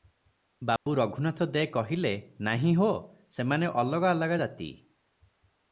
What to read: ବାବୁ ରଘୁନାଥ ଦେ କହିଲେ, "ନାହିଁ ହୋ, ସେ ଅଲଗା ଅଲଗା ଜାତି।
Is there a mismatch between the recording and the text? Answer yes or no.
yes